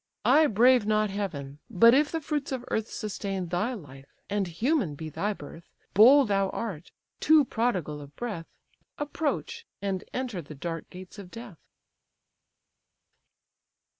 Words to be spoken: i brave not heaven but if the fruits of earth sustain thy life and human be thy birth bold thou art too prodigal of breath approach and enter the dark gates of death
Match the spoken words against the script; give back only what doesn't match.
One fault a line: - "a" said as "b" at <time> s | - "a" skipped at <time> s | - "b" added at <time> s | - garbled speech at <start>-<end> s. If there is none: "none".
none